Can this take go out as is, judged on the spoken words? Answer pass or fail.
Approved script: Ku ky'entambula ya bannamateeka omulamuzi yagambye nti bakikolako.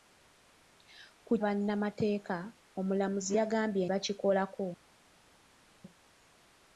fail